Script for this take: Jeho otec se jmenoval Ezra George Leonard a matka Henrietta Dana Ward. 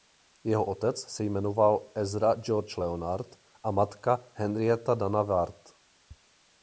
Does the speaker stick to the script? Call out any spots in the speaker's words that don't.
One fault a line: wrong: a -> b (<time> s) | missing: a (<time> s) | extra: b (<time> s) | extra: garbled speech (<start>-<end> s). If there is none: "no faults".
no faults